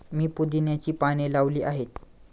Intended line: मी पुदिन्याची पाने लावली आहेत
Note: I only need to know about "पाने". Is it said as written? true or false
true